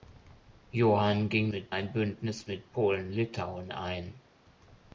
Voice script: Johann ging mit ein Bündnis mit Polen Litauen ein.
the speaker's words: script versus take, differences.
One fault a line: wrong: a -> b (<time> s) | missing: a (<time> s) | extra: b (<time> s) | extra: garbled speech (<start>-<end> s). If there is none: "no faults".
no faults